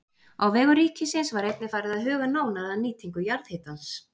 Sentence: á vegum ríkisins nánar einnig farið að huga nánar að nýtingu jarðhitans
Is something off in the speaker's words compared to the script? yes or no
yes